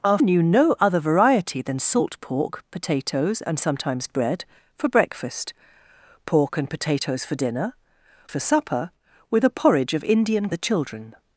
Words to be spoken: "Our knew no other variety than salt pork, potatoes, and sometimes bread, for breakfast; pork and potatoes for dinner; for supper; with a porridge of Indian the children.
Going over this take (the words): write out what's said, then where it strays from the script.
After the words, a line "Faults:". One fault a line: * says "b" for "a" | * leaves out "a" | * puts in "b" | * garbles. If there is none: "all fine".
"Our knew no other variety than salt pork, potatoes, and sometimes bread, for breakfast; pork and potatoes for dinner; for supper; with a porridge of Indian the children.
Faults:
all fine